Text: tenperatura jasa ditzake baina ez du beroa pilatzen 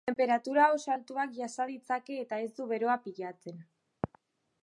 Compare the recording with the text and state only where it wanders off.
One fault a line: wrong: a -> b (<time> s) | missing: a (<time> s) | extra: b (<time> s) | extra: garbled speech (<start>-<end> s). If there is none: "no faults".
extra: oso altuak (0.8 s)
wrong: baina -> eta (2.2 s)